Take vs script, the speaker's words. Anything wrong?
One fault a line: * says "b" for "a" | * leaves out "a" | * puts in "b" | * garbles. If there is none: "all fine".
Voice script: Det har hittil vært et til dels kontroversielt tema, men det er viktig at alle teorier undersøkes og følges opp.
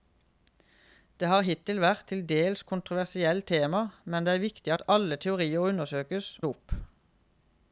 * leaves out "og følges"